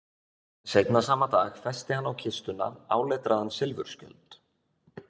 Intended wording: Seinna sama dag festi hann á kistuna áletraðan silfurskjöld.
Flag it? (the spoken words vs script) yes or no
no